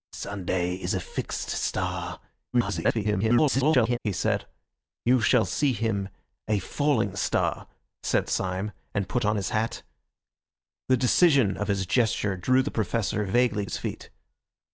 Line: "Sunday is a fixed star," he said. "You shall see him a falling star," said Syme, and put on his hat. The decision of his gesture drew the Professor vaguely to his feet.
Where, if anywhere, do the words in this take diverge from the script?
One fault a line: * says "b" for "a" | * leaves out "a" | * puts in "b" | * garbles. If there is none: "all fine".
* garbles
* leaves out "to"